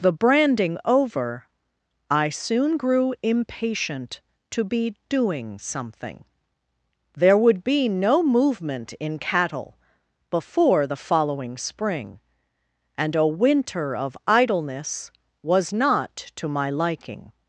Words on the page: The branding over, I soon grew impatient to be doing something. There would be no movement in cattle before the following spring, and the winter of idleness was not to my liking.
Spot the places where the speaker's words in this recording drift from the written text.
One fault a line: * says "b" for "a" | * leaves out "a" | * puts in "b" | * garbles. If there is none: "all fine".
* says "a" for "the"